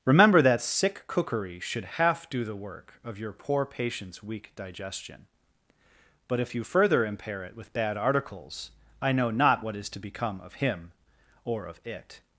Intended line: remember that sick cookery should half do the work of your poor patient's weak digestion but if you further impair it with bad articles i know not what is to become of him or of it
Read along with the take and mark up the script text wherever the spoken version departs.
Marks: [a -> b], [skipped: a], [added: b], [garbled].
remember that sick cookery should half do the work of your poor patient's weak digestion but if you further impair it with bad articles i know not what is to become of him or of it